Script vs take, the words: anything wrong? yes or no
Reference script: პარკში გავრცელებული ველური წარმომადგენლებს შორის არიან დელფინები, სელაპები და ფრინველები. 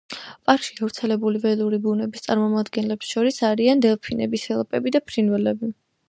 yes